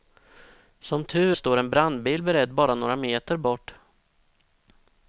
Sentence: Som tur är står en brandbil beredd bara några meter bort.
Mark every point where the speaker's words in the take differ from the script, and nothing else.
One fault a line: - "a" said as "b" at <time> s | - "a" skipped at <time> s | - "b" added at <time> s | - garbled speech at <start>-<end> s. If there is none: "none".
- "är" skipped at 1.4 s